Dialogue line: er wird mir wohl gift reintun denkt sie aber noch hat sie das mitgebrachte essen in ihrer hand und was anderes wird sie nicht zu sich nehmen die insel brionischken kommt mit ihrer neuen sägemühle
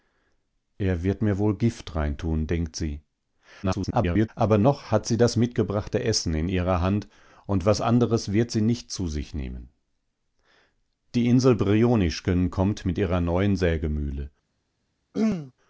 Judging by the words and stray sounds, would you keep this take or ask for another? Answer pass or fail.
fail